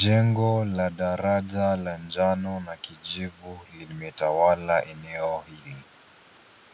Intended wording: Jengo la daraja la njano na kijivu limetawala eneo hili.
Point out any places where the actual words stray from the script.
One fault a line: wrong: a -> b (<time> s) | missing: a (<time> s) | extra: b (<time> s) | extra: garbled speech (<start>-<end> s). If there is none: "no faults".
no faults